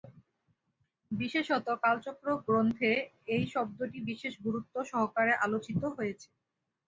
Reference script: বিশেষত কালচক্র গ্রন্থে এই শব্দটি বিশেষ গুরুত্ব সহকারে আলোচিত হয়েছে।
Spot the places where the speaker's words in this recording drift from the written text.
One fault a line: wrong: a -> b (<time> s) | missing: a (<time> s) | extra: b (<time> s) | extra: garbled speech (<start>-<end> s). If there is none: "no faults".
no faults